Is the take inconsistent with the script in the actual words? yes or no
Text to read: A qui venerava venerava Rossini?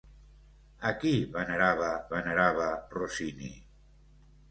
no